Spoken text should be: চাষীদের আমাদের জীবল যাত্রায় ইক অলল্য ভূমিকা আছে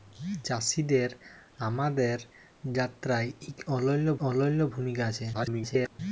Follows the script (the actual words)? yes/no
no